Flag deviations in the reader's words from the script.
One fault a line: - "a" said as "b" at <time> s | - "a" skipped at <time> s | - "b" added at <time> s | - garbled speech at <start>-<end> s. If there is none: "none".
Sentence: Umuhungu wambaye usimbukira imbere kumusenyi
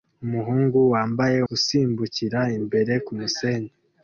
none